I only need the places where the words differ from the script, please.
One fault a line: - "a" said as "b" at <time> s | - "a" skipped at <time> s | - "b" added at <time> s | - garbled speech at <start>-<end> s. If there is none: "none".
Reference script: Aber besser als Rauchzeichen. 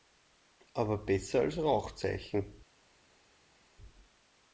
none